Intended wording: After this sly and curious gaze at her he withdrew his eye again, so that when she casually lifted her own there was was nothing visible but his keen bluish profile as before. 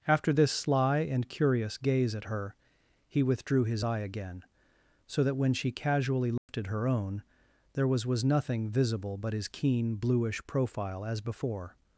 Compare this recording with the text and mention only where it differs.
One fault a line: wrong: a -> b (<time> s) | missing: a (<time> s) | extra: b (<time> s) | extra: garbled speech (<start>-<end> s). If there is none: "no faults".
no faults